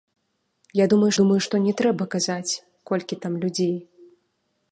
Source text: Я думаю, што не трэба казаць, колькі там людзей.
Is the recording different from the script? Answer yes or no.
yes